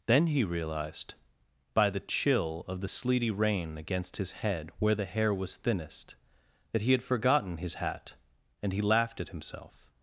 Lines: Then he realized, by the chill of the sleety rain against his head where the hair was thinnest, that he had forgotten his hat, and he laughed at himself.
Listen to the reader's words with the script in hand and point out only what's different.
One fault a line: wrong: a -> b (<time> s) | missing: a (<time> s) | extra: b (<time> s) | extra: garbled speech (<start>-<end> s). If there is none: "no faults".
no faults